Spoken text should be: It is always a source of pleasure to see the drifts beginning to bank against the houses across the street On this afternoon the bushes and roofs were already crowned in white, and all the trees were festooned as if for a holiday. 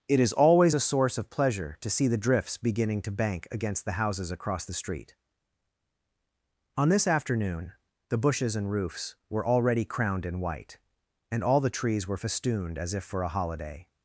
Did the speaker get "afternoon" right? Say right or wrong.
right